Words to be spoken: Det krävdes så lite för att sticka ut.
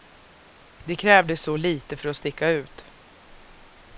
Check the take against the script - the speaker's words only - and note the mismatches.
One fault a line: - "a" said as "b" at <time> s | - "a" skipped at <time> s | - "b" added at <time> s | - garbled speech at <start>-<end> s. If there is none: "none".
none